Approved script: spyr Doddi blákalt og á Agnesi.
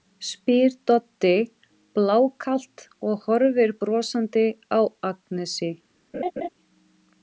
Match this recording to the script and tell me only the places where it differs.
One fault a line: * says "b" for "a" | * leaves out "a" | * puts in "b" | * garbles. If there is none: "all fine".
* puts in "horfir brosandi"